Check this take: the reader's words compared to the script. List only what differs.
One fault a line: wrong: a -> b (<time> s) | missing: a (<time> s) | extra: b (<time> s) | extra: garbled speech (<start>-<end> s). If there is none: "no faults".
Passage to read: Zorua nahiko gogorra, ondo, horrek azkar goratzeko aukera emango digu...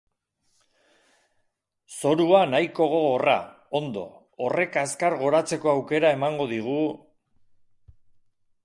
no faults